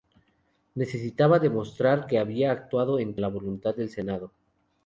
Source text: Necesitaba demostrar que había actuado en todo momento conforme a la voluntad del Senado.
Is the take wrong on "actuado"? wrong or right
right